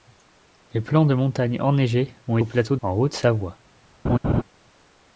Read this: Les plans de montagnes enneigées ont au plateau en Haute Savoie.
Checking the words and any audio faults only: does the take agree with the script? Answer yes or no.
no